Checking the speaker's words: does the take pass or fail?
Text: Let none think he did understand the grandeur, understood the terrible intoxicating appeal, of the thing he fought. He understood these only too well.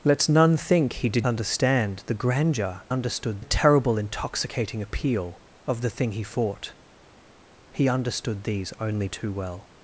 pass